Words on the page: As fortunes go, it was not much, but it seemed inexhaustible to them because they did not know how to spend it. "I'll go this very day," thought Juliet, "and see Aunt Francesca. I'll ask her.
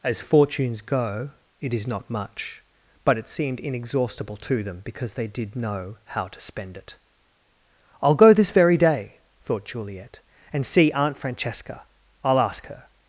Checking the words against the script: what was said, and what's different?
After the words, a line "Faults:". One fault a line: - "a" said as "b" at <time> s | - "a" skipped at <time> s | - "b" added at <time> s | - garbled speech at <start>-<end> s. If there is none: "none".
As fortunes go, it is not much, but it seemed inexhaustible to them because they did know how to spend it. "I'll go this very day," thought Juliet, "and see Aunt Francesca. I'll ask her.
Faults:
- "was" said as "is" at 1.7 s
- "not" skipped at 5.5 s